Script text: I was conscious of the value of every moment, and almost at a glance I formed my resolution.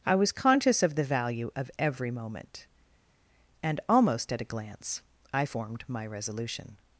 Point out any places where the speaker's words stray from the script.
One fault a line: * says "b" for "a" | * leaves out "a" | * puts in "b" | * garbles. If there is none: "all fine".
all fine